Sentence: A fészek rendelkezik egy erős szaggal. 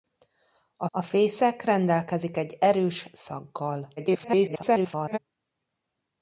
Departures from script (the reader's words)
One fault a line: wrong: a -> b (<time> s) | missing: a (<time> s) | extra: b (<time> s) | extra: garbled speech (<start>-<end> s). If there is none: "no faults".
extra: a (0.9 s)
extra: garbled speech (4.0-5.2 s)